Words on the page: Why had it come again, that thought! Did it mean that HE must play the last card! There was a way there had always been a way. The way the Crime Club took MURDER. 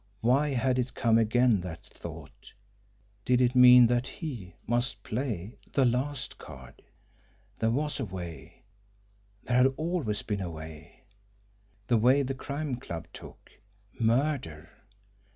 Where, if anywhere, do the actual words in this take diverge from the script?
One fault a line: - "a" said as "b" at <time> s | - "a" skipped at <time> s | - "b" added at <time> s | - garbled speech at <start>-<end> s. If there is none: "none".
none